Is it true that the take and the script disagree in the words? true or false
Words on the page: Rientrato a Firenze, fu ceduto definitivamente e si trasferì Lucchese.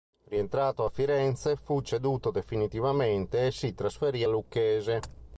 false